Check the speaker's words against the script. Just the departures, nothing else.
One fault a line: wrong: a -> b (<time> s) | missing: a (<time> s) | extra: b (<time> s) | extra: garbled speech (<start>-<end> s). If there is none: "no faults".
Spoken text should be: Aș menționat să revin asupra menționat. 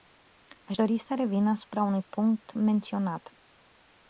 wrong: menționat -> dori (0.7 s)
extra: unui punct (1.8 s)